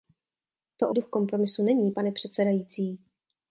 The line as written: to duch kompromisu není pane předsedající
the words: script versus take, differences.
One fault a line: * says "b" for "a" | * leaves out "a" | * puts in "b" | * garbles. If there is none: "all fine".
all fine